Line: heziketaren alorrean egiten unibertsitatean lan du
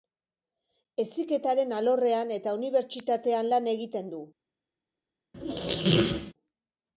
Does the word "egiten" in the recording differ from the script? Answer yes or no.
yes